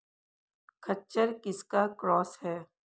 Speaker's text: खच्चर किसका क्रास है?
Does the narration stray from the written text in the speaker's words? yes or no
no